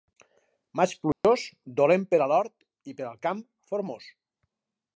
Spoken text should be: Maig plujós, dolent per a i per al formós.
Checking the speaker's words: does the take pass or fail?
fail